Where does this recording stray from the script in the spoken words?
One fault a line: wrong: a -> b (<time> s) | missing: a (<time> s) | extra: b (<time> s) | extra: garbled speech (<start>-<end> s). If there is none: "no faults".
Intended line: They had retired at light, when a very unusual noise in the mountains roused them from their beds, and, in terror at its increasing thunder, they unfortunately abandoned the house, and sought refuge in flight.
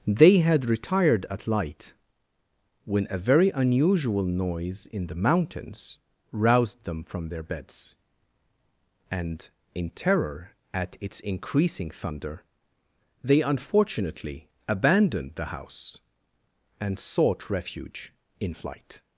no faults